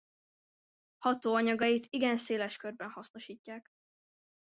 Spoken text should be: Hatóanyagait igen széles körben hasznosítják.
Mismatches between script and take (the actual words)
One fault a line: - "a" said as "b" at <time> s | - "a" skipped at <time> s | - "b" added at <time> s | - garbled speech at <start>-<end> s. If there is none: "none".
none